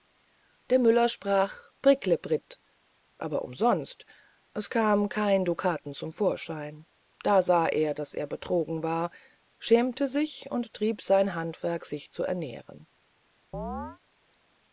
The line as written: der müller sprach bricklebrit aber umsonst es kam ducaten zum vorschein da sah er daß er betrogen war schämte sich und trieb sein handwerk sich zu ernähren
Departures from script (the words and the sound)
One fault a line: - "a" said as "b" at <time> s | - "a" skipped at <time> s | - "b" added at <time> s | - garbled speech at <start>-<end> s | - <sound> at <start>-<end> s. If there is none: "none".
- "kein" added at 5.1 s
- chirp at 13.5-14.0 s